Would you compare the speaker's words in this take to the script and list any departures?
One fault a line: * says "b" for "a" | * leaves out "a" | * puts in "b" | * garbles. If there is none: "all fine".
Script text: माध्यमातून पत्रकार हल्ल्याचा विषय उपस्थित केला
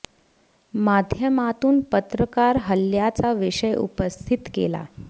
all fine